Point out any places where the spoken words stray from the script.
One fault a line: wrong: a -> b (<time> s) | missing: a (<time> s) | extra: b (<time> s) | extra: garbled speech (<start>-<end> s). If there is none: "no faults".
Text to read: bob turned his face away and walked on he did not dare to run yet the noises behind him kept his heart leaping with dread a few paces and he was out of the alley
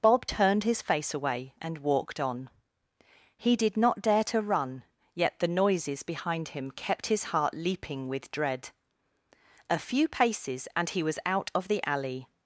no faults